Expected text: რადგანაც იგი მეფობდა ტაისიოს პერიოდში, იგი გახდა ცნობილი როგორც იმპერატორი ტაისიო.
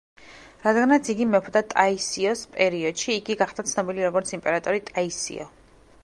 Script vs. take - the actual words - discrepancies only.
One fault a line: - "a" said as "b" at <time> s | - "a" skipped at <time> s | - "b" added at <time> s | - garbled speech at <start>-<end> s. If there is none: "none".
none